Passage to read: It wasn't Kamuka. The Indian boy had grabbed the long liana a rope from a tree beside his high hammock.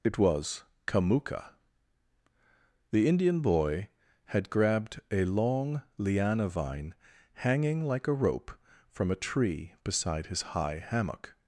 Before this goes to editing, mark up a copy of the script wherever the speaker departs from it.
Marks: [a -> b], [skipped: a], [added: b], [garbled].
It [wasn't -> was] Kamuka. The Indian boy had grabbed [the -> a] long liana [added: vine hanging like] a rope from a tree beside his high hammock.